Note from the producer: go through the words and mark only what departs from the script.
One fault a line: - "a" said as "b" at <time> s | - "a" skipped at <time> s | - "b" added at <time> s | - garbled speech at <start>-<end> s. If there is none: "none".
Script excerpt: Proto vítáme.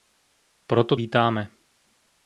none